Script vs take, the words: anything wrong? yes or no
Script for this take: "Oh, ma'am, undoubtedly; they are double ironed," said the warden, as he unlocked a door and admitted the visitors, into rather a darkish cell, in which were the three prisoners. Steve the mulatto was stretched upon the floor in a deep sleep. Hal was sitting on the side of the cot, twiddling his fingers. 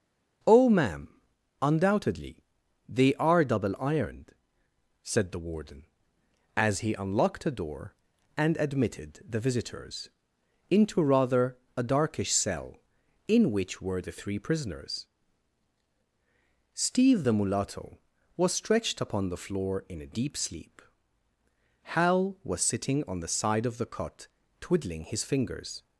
no